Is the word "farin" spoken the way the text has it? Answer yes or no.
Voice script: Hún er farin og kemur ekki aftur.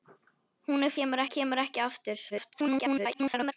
no